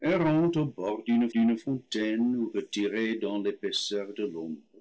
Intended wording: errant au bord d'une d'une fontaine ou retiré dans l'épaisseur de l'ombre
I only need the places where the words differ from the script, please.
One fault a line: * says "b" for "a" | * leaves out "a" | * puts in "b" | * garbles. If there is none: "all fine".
all fine